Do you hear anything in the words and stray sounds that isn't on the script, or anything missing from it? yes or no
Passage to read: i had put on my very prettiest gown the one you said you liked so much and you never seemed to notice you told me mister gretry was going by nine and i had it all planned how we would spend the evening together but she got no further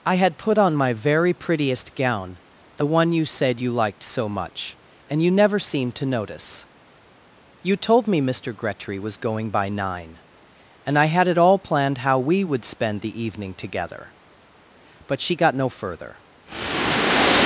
no